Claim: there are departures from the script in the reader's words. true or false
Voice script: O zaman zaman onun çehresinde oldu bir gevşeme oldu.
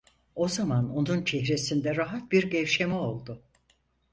true